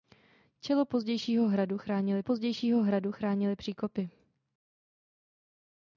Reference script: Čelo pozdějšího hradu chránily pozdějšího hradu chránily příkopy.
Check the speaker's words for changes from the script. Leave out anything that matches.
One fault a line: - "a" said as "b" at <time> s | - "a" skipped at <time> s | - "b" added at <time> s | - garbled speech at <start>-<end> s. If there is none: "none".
none